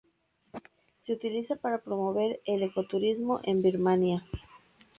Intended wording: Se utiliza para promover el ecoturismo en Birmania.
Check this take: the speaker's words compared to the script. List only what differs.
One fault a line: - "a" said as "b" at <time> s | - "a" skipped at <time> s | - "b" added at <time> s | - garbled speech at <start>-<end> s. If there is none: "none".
none